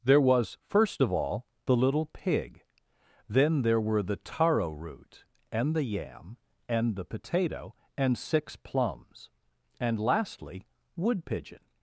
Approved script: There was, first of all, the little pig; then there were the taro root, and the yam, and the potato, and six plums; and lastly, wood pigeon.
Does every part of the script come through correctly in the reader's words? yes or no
yes